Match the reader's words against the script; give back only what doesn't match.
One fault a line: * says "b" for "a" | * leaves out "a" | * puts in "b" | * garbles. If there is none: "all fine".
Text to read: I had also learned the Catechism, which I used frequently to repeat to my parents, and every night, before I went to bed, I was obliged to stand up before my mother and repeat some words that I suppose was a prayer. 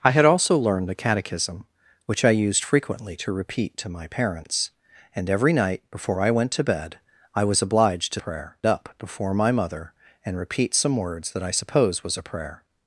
* says "prayer" for "stand"